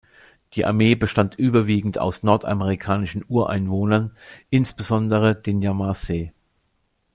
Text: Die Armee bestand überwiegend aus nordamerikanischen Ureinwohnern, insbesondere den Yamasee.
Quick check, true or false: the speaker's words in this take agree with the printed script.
true